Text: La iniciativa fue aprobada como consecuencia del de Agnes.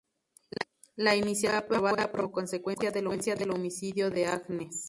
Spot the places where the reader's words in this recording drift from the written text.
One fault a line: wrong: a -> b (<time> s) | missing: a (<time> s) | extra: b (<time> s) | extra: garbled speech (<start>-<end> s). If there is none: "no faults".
extra: homicidio (3.0 s)